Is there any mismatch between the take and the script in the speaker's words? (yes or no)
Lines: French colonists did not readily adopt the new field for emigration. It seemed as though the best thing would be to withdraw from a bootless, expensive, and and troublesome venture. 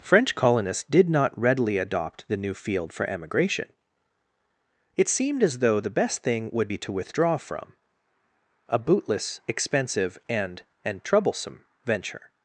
no